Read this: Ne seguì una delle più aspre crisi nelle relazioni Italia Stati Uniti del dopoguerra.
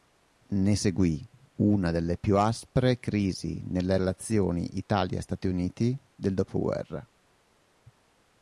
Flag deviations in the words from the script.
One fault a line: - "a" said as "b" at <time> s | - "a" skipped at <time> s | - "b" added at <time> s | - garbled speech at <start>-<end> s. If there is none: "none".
none